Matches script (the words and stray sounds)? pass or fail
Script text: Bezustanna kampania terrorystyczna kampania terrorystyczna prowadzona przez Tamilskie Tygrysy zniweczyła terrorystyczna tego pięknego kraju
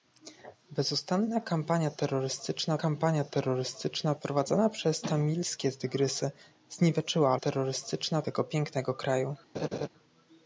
fail